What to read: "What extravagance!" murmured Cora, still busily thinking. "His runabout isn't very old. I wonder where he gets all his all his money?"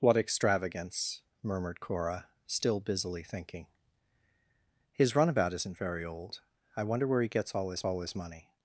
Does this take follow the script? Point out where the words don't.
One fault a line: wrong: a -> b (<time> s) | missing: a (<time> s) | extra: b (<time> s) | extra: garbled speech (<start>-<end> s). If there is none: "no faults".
no faults